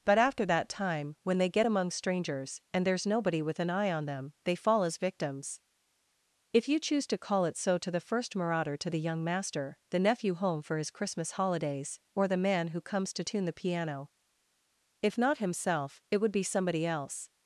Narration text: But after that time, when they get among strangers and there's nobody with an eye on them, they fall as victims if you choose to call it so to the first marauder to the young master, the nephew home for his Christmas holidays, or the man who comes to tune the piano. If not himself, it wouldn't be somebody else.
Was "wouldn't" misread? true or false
true